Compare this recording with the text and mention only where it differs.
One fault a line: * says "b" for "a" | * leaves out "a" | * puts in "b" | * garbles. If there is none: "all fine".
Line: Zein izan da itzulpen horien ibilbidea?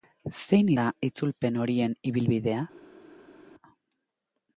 * leaves out "izan"